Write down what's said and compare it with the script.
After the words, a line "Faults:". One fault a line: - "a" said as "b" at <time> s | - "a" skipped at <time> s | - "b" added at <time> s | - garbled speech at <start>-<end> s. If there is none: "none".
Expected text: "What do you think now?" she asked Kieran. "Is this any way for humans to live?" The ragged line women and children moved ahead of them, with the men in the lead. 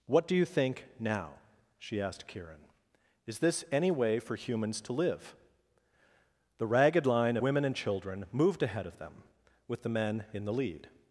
"What do you think now?" she asked Kieran. "Is this any way for humans to live?" The ragged line women and children moved ahead of them, with the men in the lead.
Faults:
none